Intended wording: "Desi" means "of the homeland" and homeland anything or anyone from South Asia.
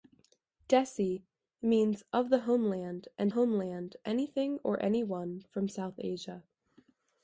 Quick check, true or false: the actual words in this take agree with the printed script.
true